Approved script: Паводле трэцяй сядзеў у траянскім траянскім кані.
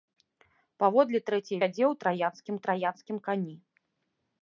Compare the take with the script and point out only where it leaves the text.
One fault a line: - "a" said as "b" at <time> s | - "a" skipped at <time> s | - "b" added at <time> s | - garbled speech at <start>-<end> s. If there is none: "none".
none